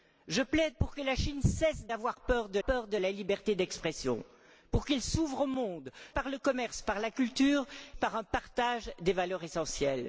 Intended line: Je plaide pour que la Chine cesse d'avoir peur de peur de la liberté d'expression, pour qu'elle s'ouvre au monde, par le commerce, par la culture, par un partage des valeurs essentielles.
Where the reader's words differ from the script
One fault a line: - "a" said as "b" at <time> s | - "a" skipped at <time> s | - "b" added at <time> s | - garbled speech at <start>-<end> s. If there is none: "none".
none